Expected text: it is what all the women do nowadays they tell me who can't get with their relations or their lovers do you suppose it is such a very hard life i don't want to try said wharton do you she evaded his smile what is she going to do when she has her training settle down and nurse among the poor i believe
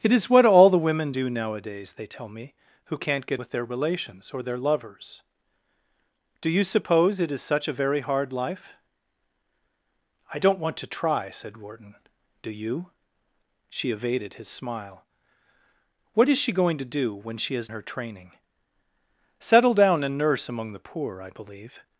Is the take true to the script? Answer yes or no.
yes